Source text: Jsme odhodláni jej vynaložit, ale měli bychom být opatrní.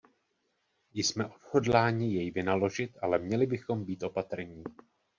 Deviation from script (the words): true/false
false